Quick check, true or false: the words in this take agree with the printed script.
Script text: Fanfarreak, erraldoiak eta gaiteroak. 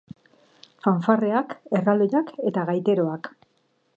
true